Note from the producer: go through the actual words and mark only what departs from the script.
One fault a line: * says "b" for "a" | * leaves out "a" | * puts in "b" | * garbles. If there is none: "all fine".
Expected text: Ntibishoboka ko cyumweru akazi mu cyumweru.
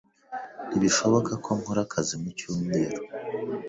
* says "nkora" for "cyumweru"